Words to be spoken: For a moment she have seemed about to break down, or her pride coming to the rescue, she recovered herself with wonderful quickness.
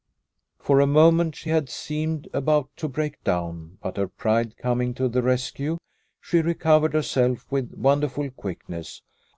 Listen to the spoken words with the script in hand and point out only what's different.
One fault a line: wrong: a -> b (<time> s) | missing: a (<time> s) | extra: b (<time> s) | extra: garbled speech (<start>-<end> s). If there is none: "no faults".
wrong: have -> had (1.5 s)
wrong: or -> but (3.8 s)